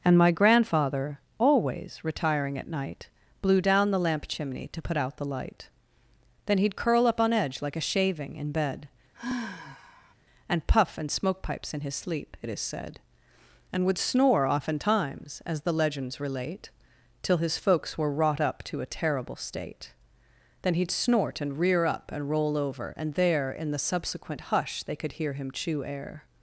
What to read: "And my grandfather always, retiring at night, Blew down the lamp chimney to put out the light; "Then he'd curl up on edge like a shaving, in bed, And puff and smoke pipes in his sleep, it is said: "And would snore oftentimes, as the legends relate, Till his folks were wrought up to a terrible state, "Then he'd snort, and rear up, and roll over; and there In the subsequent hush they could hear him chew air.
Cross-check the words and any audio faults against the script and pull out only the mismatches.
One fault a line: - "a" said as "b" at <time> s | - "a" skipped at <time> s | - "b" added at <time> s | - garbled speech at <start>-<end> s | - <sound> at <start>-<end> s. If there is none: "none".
- sigh at 9.1-10.1 s